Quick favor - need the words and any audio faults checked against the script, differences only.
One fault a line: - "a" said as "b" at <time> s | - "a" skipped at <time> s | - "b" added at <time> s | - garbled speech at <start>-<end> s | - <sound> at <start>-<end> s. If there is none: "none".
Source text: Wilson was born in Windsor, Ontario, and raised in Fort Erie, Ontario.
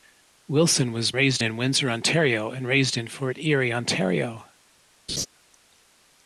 - "born" said as "raised" at 1.1 s
- laugh at 5.1-5.3 s